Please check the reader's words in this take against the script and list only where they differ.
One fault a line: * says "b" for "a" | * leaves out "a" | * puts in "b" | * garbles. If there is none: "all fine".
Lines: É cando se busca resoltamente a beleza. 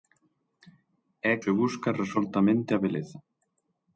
* leaves out "cando"